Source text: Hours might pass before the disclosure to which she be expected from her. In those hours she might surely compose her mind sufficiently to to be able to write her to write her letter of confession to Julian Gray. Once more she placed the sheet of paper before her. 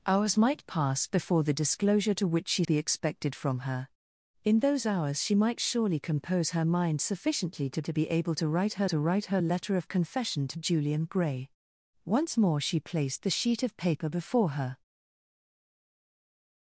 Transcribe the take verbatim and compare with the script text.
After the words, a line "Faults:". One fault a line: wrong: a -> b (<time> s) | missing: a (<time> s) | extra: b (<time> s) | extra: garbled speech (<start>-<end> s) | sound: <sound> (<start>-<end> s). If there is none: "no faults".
Hours might pass before the disclosure to which she be expected from her. In those hours she might surely compose her mind sufficiently to to be able to write her to write her letter of confession to Julian Gray. Once more she placed the sheet of paper before her.
Faults:
no faults